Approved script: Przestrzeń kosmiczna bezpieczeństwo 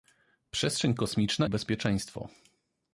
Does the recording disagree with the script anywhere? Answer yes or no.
no